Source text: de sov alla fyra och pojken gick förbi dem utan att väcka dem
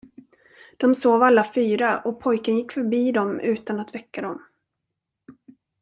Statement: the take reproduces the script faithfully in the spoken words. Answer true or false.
true